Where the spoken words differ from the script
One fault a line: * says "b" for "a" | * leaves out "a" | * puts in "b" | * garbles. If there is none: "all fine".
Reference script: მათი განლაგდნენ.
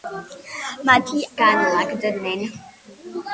all fine